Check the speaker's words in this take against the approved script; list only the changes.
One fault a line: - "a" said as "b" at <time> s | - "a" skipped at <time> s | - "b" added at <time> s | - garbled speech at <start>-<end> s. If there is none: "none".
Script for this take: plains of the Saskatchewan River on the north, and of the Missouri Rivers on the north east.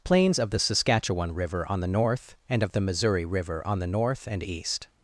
- "Rivers" said as "River" at 3.2 s
- "and" added at 4.3 s